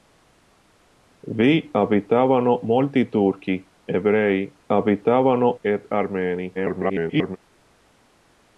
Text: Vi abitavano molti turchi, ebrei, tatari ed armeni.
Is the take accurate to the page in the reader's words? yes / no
no